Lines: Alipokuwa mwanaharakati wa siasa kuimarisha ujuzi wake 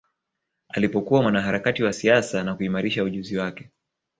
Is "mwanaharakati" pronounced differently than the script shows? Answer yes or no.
no